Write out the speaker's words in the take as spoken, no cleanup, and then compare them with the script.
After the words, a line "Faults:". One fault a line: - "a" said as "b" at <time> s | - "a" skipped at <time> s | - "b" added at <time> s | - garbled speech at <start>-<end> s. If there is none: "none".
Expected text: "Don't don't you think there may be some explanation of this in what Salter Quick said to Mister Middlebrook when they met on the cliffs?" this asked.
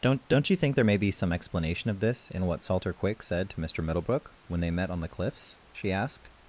"Don't don't you think there may be some explanation of this in what Salter Quick said to Mister Middlebrook when they met on the cliffs?" she asked.
Faults:
- "this" said as "she" at 5.7 s